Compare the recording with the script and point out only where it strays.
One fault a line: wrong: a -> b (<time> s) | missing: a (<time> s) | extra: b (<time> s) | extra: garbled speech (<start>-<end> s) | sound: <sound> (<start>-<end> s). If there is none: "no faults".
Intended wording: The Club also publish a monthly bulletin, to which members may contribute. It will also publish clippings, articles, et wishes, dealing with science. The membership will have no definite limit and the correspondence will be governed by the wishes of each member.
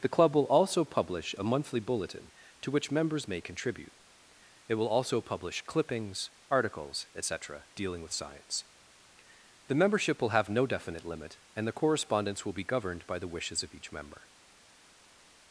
extra: will (0.3 s)
wrong: wishes -> cetera (7.2 s)